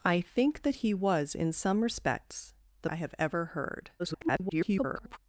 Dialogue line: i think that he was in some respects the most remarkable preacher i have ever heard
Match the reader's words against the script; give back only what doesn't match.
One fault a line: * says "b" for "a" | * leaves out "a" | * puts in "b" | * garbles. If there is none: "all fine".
* leaves out "most remarkable preacher"
* garbles